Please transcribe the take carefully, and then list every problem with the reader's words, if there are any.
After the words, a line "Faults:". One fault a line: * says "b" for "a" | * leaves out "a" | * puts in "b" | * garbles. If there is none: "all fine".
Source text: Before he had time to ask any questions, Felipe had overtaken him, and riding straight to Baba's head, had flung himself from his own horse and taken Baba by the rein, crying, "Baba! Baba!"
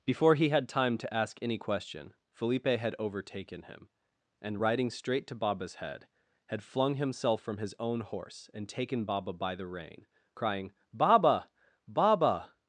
Before he had time to ask any question, Felipe had overtaken him, and riding straight to Baba's head, had flung himself from his own horse and taken Baba by the rein, crying, "Baba! Baba!"
Faults:
* says "question" for "questions"